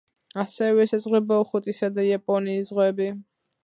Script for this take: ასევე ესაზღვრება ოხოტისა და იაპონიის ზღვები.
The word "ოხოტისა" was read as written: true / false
true